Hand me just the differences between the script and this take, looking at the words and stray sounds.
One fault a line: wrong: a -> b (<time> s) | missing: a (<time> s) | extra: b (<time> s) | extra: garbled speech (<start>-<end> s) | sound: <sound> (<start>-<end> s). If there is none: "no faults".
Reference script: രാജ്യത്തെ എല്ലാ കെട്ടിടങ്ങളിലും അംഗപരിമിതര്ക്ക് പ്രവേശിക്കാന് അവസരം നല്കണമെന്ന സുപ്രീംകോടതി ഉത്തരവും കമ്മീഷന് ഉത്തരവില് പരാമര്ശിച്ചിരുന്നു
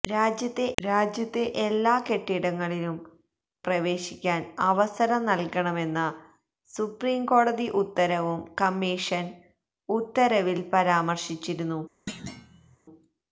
extra: രാജ്യത്തെ (0.8 s)
missing: അംഗപരിമിതര്ക്ക് (3.0 s)
sound: thud (12.1-12.8 s)